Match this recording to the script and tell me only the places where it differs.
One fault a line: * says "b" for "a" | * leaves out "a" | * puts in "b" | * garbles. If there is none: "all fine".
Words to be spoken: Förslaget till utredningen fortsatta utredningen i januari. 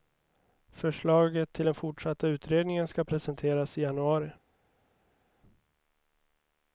* says "den" for "utredningen"
* puts in "ska presenteras"